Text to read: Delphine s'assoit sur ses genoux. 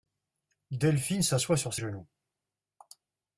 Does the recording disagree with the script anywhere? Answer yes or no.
yes